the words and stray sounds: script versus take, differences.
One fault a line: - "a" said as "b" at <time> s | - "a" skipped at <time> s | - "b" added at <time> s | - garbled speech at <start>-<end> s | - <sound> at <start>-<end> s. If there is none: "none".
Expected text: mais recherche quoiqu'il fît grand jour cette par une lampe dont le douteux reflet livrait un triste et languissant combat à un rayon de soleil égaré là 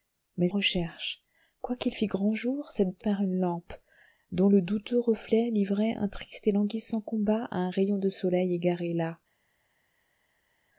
none